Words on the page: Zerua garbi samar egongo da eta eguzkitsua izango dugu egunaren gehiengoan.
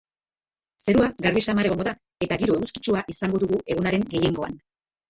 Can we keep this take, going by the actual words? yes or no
no